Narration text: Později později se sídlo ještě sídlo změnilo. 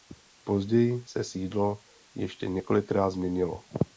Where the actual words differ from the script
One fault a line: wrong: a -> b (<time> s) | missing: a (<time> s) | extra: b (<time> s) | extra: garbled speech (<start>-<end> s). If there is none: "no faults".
missing: později (1.0 s)
wrong: sídlo -> několikrát (2.5 s)